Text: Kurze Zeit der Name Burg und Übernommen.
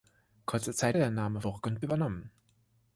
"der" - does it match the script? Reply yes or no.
yes